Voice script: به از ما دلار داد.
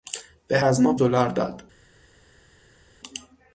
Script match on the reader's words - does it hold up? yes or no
yes